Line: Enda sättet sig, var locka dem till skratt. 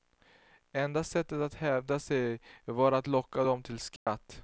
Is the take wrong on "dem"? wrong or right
right